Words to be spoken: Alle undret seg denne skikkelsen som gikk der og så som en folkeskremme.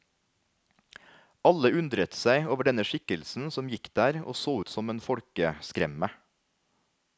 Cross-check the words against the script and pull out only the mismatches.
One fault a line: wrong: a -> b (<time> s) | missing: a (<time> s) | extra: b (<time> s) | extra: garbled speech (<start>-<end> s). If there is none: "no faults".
extra: over (2.5 s)
extra: ut (4.6 s)